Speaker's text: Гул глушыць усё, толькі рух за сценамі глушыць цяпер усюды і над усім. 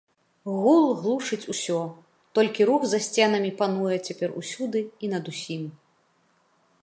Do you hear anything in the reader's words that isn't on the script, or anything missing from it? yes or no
yes